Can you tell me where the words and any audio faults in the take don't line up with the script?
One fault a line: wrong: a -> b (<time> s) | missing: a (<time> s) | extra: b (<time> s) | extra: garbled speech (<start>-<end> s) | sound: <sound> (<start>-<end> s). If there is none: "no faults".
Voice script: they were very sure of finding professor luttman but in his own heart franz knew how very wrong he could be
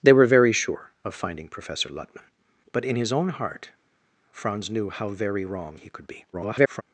extra: garbled speech (6.3-6.8 s)